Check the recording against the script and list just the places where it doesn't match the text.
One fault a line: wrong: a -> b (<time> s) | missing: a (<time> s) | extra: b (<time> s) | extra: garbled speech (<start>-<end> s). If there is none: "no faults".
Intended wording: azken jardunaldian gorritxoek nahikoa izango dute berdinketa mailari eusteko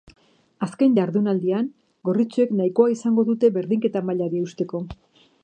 no faults